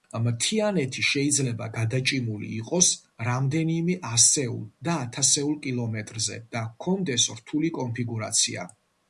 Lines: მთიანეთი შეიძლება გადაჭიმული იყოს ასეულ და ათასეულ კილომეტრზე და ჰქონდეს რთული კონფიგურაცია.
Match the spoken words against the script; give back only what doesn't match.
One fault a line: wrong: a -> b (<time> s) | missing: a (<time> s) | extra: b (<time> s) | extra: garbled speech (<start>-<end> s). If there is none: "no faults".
extra: რამდენიმე (3.3 s)